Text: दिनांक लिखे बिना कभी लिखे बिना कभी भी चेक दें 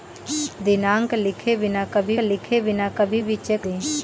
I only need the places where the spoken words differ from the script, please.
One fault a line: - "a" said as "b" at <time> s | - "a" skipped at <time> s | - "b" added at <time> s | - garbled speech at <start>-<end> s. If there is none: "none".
none